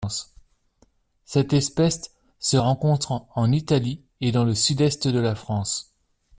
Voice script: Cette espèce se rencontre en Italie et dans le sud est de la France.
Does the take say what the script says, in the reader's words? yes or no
yes